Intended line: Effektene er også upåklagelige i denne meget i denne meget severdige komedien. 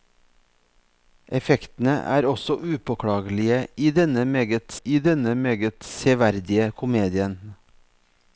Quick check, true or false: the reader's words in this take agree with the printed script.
true